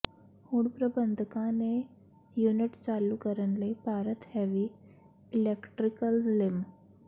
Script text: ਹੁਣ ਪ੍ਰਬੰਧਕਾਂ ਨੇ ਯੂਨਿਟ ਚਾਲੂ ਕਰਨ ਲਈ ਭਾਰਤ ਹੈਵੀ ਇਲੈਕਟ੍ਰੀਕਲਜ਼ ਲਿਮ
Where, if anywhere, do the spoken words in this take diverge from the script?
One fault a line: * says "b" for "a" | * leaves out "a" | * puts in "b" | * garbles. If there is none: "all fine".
all fine